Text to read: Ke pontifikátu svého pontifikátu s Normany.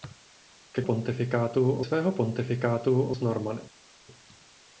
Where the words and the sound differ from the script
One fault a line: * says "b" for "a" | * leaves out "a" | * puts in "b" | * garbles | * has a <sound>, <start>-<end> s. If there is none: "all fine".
all fine